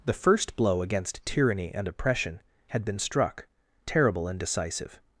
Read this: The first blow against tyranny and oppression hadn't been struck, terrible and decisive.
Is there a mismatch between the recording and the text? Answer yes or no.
yes